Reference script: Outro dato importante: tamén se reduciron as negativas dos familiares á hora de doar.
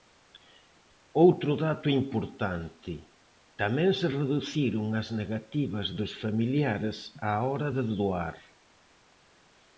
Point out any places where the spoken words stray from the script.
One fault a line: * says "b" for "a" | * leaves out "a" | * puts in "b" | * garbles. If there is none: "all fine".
all fine